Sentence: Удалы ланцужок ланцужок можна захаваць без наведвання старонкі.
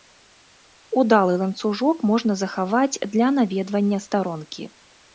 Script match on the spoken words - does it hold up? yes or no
no